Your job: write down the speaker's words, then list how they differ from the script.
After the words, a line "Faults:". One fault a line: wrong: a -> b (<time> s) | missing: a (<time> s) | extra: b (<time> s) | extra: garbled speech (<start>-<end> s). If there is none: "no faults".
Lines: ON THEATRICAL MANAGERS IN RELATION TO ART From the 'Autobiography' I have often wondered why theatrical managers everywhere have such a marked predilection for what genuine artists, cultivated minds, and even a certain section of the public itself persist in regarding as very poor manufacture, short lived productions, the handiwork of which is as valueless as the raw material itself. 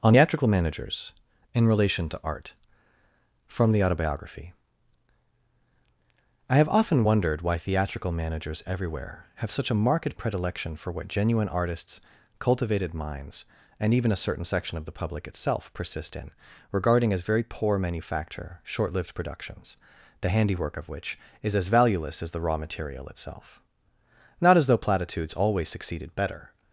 ON THEATRICAL MANAGERS IN RELATION TO ART From the 'Autobiography' I have often wondered why theatrical managers everywhere have such a marked predilection for what genuine artists, cultivated minds, and even a certain section of the public itself persist in regarding as very poor manufacture, short lived productions, the handiwork of which is as valueless as the raw material itself. Not as though platitudes always succeeded better
Faults:
extra: Not as though platitudes always succeeded better (24.4 s)